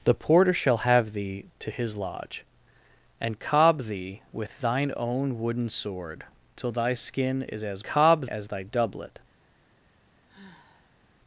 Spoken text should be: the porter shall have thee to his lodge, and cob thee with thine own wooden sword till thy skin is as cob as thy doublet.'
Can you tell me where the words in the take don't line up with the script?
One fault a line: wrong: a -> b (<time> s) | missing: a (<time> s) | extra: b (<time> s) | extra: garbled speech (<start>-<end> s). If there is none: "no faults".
no faults